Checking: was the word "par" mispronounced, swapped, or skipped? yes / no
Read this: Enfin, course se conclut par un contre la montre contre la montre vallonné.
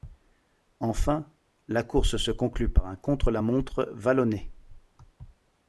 no